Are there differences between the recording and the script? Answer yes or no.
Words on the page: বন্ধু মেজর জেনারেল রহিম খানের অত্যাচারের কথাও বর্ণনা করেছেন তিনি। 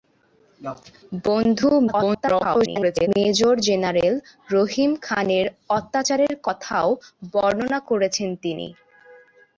yes